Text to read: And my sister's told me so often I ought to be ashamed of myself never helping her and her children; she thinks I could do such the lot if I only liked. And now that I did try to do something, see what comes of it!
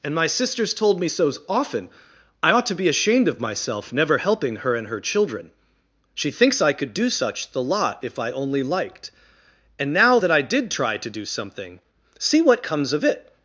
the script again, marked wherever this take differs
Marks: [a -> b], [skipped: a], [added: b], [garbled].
And my sister's told me so often I ought to be ashamed of myself never helping her and her children; she thinks I could do such the lot if I only liked. And now that I did try to do something, see what comes of it!